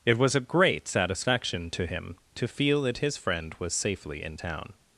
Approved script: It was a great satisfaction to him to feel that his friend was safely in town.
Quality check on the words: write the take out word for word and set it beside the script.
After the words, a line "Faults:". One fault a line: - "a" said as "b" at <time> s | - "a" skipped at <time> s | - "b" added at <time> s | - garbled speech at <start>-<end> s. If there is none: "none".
It was a great satisfaction to him to feel that his friend was safely in town.
Faults:
none